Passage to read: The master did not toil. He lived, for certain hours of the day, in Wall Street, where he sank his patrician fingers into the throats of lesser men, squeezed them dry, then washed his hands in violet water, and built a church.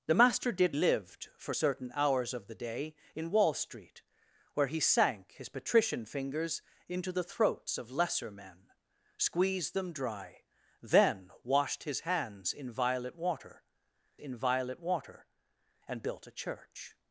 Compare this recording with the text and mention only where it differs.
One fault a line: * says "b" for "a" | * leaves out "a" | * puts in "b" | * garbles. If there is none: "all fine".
* leaves out "not toil He"
* puts in "in violet water"